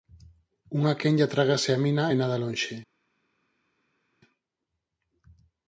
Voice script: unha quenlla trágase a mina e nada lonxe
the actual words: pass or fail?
pass